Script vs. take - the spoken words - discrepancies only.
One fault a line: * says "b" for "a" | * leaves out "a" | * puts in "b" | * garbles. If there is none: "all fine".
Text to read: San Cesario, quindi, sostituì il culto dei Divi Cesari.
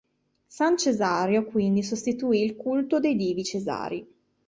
all fine